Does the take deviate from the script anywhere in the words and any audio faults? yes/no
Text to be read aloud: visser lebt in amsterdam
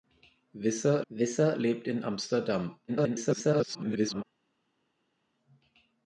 yes